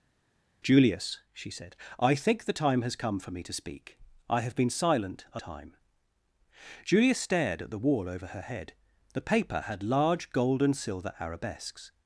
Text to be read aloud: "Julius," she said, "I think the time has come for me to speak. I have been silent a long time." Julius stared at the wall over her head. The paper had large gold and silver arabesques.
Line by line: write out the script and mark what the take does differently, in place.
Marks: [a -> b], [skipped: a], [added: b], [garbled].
"Julius," she said, "I think the time has come for me to speak. I have been silent a [skipped: long] time." Julius stared at the wall over her head. The paper had large gold and silver arabesques.